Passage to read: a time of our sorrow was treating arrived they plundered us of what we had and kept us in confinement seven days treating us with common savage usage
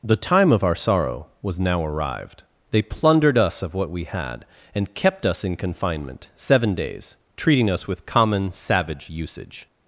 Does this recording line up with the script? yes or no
no